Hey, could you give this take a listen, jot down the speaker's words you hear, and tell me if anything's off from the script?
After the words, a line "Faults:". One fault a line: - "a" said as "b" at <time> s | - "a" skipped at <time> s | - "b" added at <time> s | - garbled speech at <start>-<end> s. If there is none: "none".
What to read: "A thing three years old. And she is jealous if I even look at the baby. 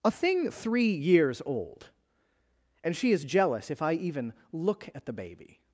"A thing three years old. And she is jealous if I even look at the baby.
Faults:
none